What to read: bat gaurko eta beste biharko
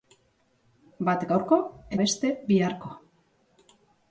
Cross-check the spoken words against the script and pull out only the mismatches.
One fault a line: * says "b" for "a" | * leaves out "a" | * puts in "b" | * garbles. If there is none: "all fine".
* leaves out "eta"